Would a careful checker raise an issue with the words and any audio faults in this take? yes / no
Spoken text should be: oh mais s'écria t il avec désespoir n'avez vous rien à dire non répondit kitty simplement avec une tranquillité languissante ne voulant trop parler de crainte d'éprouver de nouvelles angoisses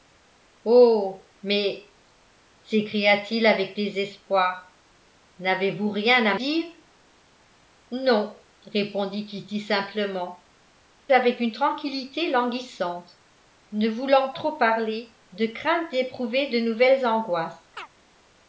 yes